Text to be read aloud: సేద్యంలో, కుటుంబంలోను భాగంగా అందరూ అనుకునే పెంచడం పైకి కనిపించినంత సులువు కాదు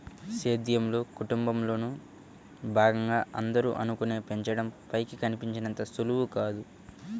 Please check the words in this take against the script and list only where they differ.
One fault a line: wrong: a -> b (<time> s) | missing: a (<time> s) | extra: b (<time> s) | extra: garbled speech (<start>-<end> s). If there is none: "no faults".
no faults